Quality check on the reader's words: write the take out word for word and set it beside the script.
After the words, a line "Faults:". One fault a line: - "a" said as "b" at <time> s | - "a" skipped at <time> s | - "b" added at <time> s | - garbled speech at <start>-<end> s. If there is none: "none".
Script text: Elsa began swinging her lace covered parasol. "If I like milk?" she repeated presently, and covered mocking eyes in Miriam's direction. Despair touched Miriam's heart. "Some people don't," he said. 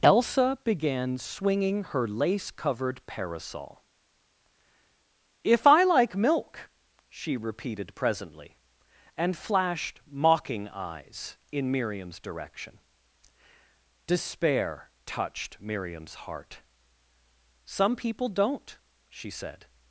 Elsa began swinging her lace covered parasol. "If I like milk?" she repeated presently, and flashed mocking eyes in Miriam's direction. Despair touched Miriam's heart. "Some people don't," she said.
Faults:
- "covered" said as "flashed" at 9.4 s
- "he" said as "she" at 19.1 s